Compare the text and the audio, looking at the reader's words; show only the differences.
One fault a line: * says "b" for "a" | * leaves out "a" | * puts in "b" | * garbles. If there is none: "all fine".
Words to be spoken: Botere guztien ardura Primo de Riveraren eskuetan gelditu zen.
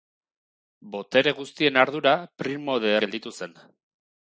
* leaves out "Riveraren eskuetan"